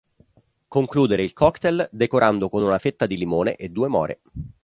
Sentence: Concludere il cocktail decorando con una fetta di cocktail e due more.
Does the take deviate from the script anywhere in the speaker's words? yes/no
yes